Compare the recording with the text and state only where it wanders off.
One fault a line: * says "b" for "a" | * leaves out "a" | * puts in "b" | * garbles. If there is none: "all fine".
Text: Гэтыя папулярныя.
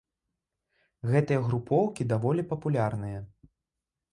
* puts in "групоўкі даволі"